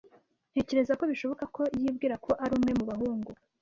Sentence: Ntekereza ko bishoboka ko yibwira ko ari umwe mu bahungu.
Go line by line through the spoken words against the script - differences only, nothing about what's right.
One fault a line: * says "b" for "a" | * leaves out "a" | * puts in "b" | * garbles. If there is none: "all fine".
all fine